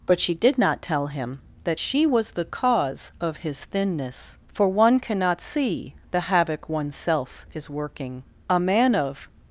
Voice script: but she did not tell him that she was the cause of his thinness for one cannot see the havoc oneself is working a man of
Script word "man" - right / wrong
right